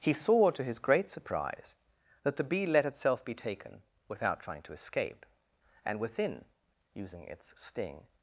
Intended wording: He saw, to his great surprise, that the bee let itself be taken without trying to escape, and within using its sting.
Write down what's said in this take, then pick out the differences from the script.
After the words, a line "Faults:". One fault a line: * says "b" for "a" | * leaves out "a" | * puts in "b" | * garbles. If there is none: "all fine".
He saw, to his great surprise, that the bee let itself be taken without trying to escape, and within using its sting.
Faults:
all fine